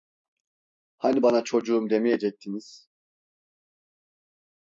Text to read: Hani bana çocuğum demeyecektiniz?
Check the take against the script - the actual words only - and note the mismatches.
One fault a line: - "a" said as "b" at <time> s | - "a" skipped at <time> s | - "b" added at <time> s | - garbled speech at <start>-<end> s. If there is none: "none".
none